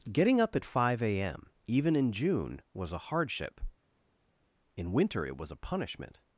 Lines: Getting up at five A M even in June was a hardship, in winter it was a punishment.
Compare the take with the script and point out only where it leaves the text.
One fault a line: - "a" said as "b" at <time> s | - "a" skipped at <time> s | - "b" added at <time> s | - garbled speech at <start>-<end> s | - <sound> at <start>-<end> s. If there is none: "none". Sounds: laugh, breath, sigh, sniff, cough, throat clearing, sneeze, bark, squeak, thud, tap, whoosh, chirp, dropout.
none